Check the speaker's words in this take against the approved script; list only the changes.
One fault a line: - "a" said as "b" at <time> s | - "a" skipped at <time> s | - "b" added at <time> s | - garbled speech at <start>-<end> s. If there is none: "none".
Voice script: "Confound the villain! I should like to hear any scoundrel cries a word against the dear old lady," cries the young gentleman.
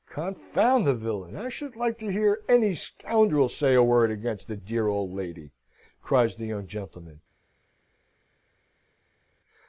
- "cries" said as "say" at 3.5 s